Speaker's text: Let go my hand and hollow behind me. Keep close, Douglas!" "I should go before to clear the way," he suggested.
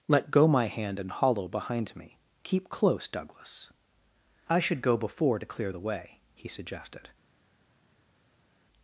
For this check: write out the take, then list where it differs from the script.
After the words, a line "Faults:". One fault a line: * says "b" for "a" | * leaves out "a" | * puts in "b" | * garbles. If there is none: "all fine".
Let go my hand and hollow behind me. Keep close, Douglas!" "I should go before to clear the way," he suggested.
Faults:
all fine